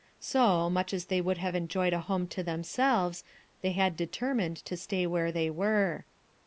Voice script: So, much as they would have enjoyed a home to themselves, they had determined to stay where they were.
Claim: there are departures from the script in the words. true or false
false